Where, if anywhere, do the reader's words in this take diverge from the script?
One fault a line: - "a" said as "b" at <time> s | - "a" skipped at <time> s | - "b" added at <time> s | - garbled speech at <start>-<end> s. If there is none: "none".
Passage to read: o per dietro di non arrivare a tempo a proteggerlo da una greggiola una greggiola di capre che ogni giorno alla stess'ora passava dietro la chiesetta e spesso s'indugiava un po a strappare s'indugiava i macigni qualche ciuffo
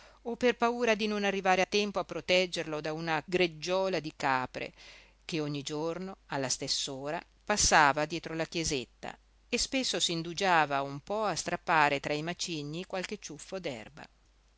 - "dietro" said as "paura" at 0.6 s
- "una greggiola" skipped at 4.0 s
- "s'indugiava" said as "tra" at 12.0 s